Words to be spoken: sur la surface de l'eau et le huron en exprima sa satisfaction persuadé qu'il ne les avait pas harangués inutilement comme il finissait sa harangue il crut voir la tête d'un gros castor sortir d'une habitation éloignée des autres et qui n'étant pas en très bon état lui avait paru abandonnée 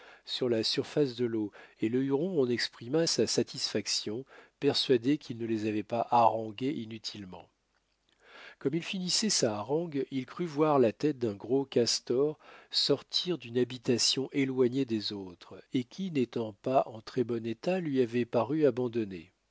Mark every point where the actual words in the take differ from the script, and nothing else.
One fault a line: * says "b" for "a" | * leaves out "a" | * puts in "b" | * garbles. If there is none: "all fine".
all fine